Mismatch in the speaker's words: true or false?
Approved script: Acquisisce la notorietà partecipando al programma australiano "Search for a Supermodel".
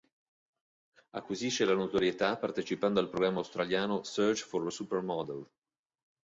false